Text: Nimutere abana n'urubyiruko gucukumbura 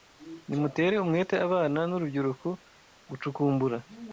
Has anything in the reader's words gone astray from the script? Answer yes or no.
yes